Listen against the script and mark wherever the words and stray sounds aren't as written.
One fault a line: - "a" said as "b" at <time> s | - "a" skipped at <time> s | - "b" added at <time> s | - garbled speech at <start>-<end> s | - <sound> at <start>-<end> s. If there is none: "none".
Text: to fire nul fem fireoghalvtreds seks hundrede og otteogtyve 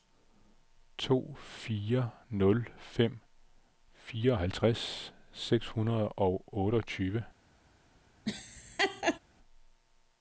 - laugh at 8.3-9.2 s